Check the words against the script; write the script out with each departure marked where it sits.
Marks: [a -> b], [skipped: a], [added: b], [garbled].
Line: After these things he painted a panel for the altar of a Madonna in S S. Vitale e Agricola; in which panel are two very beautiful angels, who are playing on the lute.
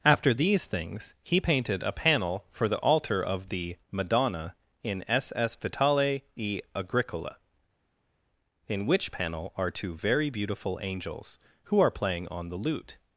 After these things he painted a panel for the altar of [a -> the] Madonna in S S. Vitale e Agricola; in which panel are two very beautiful angels, who are playing on the lute.